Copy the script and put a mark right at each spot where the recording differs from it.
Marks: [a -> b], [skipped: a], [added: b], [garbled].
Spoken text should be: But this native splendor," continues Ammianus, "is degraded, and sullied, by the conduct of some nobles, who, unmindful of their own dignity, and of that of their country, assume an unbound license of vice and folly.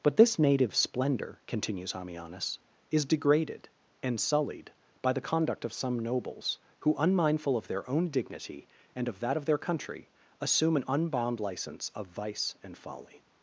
But this native splendor," continues Ammianus, "is degraded, and sullied, by the conduct of some nobles, who, unmindful of their own dignity, and of that of their country, assume an unbound license of vice and folly.